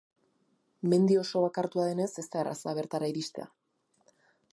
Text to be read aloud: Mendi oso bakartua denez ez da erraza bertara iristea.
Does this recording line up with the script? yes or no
yes